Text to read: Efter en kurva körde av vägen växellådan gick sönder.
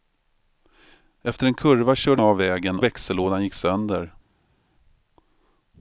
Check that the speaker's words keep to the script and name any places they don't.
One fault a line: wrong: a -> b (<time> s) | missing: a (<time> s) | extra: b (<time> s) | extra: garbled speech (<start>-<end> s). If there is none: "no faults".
no faults